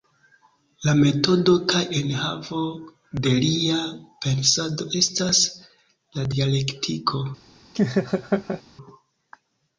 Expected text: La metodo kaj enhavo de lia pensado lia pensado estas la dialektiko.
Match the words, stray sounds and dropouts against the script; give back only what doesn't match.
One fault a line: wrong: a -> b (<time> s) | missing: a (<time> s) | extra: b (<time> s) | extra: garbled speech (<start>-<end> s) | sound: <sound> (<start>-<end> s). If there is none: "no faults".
missing: lia pensado (4.9 s)
sound: laugh (7.7-8.6 s)